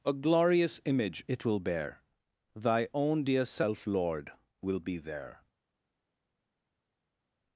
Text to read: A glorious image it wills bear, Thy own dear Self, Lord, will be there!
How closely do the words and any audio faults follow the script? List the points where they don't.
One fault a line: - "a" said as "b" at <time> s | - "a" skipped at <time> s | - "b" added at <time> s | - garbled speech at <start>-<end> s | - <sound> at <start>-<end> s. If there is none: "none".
- "wills" said as "will" at 1.4 s